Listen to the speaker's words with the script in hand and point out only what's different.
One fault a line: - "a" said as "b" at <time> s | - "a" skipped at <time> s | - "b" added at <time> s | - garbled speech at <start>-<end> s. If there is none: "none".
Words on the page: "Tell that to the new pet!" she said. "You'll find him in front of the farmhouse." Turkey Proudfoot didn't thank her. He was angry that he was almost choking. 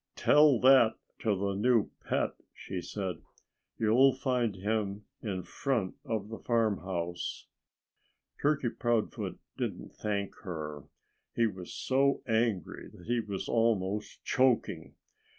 - "so" added at 11.7 s